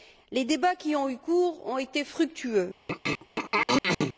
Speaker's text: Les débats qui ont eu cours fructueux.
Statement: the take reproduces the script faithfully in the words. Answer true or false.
false